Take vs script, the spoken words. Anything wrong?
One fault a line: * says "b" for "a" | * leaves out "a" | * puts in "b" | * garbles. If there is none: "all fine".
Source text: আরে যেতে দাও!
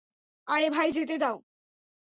* puts in "ভাই"